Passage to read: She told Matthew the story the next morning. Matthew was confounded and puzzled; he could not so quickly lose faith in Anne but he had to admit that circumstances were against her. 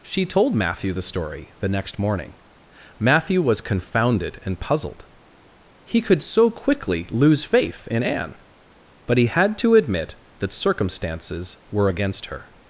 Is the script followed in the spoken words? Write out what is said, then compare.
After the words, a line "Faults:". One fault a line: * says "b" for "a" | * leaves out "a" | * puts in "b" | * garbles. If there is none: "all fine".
She told Matthew the story the next morning. Matthew was confounded and puzzled; he could so quickly lose faith in Anne but he had to admit that circumstances were against her.
Faults:
* leaves out "not"